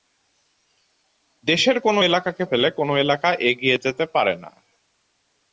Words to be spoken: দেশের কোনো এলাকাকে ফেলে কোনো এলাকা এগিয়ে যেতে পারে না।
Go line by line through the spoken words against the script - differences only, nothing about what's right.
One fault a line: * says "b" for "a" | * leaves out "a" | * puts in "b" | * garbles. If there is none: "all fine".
all fine